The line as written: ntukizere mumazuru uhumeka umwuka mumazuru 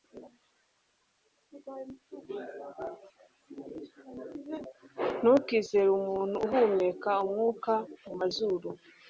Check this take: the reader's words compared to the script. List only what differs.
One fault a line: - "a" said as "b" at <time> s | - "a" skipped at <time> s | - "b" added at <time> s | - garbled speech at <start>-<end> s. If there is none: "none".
- "mumazuru" said as "umuntu" at 6.0 s